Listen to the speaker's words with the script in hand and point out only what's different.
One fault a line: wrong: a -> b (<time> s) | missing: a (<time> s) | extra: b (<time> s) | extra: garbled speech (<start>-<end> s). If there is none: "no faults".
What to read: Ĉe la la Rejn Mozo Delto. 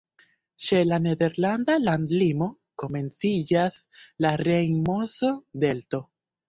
extra: nederlanda landlimo komenciĝas (1.1 s)